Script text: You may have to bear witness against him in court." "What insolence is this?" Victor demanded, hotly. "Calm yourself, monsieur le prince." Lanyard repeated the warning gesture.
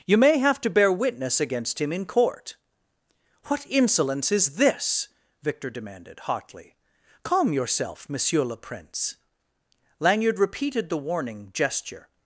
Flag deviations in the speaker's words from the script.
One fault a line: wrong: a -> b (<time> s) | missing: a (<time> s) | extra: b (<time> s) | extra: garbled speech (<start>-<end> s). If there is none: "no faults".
no faults